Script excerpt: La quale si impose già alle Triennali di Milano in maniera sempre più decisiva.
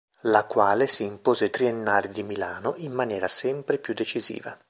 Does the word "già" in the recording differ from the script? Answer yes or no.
yes